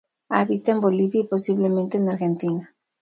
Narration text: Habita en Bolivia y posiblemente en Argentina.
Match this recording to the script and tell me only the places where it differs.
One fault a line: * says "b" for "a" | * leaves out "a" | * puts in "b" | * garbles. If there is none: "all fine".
all fine